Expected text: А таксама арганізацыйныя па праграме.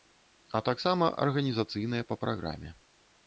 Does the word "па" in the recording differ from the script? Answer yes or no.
no